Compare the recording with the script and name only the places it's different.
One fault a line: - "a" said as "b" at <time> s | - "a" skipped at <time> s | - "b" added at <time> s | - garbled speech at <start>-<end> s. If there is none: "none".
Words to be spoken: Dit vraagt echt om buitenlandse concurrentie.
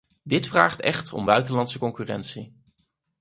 none